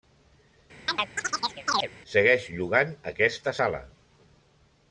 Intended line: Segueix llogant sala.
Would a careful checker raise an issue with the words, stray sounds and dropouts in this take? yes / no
yes